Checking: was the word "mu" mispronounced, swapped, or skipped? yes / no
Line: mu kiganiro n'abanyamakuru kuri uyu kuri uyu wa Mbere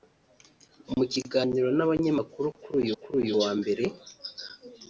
no